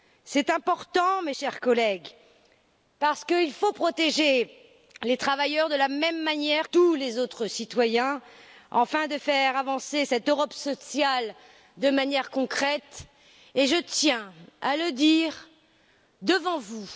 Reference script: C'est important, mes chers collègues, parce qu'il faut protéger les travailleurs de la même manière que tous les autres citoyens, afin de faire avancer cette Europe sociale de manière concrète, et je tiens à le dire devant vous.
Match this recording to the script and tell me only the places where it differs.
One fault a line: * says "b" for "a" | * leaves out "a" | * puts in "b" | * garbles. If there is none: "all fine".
* leaves out "que"